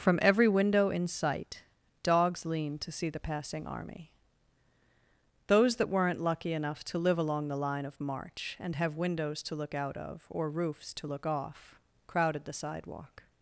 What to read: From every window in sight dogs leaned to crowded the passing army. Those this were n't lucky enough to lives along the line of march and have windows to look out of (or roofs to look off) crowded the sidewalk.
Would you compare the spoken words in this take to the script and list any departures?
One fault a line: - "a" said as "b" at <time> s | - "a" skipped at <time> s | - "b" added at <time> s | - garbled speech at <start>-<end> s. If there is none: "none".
- "crowded" said as "see" at 2.9 s
- "this" said as "that" at 5.7 s
- "lives" said as "live" at 7.0 s